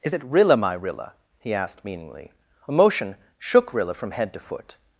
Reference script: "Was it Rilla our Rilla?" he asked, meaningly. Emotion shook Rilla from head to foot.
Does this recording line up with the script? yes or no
no